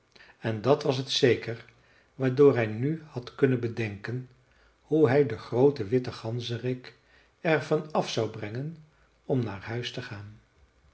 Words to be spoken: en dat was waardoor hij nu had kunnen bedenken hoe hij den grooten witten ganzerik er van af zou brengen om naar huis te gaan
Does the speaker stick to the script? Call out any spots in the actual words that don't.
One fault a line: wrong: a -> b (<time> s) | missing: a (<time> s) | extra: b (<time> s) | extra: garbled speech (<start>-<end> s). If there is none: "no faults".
extra: het zeker (1.0 s)